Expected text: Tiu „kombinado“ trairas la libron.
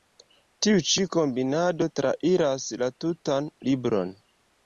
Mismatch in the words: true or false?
true